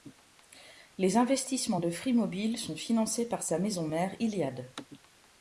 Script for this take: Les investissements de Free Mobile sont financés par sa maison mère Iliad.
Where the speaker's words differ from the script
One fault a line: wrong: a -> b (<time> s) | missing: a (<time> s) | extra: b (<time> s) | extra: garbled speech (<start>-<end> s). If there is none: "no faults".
no faults